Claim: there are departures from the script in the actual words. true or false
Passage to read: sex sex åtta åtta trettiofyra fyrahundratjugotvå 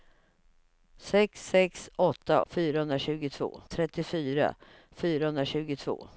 true